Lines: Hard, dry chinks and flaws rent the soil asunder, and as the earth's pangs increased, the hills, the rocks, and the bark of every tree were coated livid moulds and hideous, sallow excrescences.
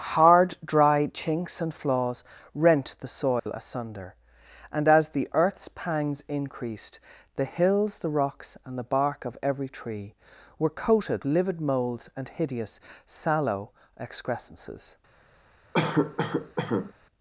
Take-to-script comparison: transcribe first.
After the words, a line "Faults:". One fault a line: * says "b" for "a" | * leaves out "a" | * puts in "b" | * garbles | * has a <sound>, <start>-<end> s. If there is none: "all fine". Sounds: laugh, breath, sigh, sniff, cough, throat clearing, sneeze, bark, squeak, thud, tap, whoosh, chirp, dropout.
Hard, dry chinks and flaws rent the soil asunder, and as the earth's pangs increased, the hills, the rocks, and the bark of every tree were coated livid moulds and hideous, sallow excrescences.
Faults:
* has a dropout, 3.4-3.5 s
* has a cough, 15.7-16.9 s